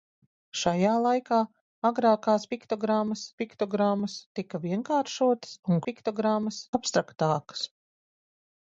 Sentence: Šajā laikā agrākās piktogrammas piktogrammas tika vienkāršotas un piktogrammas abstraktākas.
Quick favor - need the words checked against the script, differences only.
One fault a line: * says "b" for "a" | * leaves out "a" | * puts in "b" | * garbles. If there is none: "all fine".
all fine